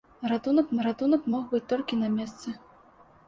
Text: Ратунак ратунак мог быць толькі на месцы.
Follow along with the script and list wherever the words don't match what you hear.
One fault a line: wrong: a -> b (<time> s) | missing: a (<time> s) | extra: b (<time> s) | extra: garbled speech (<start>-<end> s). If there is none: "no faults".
no faults